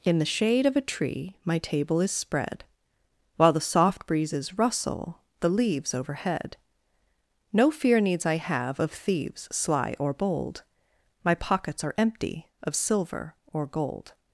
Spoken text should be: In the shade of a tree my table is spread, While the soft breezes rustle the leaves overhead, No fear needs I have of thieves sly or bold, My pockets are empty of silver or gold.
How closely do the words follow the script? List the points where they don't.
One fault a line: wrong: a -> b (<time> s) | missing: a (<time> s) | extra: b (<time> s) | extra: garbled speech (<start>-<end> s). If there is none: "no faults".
no faults